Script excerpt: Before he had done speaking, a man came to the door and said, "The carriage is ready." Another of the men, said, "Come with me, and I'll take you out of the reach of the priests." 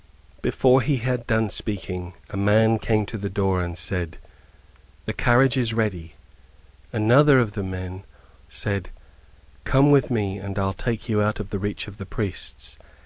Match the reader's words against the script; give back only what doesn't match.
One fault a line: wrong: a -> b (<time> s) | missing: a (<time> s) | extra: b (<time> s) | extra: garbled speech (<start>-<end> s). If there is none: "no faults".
no faults